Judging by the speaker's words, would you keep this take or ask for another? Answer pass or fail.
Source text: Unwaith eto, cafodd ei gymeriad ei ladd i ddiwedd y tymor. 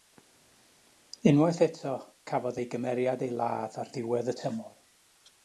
fail